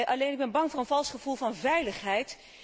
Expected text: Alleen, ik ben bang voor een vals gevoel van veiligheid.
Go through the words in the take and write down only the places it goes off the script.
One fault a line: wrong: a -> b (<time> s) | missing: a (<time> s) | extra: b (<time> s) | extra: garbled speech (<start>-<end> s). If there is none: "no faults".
no faults